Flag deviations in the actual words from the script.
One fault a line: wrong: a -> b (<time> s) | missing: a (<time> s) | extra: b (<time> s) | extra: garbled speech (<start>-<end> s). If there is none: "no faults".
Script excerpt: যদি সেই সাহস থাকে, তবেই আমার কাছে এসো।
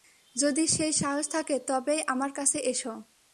no faults